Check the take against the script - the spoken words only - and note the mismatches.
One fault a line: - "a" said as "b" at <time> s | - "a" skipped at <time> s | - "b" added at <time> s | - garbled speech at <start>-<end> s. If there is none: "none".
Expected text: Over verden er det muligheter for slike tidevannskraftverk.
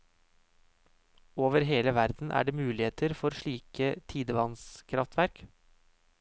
- "hele" added at 1.7 s